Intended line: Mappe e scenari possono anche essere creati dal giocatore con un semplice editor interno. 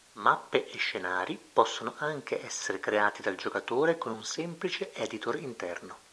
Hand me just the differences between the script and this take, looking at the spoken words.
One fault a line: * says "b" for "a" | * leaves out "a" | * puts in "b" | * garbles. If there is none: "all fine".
all fine